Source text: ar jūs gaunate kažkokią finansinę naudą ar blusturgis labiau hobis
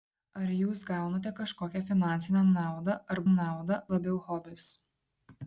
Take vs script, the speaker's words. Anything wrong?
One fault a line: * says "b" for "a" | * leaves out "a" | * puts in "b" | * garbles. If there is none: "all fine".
* says "naudą" for "blusturgis"